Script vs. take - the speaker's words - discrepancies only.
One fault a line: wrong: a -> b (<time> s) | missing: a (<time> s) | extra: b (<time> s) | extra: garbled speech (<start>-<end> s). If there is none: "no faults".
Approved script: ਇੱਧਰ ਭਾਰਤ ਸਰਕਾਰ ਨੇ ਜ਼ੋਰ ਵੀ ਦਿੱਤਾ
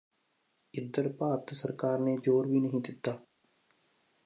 extra: ਨਹੀਂ (2.6 s)